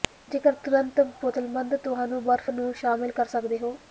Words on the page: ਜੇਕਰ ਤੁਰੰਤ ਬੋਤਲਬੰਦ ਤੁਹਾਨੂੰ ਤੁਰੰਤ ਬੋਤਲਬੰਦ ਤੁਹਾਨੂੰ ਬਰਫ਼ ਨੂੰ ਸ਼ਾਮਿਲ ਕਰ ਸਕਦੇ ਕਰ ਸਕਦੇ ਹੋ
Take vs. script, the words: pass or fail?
fail